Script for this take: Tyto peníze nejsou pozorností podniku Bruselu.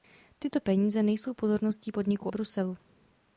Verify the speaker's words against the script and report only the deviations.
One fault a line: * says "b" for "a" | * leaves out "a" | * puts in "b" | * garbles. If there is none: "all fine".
all fine